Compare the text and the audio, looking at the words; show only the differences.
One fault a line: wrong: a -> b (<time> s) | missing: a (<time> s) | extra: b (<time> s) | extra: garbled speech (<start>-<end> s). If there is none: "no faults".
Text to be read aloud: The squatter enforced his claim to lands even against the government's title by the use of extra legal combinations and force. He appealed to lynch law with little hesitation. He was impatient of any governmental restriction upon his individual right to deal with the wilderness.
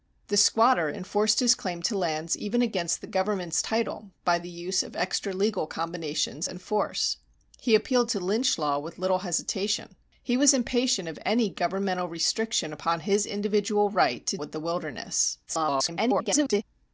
missing: deal (14.4 s)
extra: garbled speech (15.5-16.6 s)